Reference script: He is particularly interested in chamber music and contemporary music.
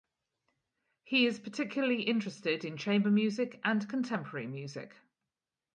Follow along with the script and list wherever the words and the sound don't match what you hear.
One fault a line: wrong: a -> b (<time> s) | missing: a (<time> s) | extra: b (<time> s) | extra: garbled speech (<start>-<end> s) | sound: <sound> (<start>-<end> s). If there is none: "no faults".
no faults